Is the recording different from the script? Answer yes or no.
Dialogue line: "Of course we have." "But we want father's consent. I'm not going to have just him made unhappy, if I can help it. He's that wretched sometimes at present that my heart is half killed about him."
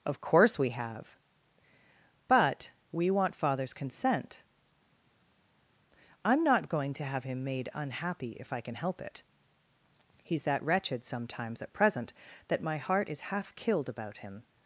yes